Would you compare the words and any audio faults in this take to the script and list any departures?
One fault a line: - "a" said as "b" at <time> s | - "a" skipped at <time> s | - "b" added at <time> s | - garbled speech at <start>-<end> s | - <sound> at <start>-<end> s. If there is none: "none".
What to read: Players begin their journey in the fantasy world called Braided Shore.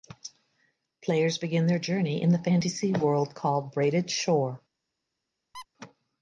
- squeak at 5.5-5.7 s